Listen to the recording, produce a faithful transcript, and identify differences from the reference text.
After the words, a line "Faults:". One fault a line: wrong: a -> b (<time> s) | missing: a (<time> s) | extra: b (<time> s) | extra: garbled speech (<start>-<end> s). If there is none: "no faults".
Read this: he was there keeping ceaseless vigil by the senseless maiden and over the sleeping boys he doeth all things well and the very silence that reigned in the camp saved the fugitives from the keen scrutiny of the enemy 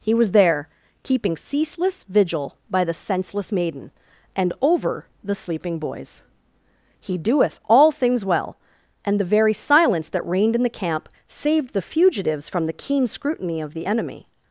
he was there keeping ceaseless vigil by the senseless maiden and over the sleeping boys he doeth all things well and the very silence that reigned in the camp saved the fugitives from the keen scrutiny of the enemy
Faults:
no faults